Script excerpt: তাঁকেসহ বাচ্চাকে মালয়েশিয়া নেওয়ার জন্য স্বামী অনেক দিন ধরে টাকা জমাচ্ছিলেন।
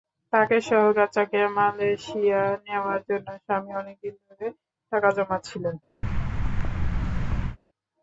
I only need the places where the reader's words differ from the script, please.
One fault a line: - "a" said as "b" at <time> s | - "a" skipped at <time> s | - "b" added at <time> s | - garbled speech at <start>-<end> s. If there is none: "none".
none